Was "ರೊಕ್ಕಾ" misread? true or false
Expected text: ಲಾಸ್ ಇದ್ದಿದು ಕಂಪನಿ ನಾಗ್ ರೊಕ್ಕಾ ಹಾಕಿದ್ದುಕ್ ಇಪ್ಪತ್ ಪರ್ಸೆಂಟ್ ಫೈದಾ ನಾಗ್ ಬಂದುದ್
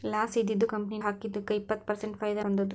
true